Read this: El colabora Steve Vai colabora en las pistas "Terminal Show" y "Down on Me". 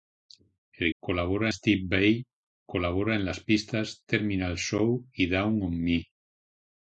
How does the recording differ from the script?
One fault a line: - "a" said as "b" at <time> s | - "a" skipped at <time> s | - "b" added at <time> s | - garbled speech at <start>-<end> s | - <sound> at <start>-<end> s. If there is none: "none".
none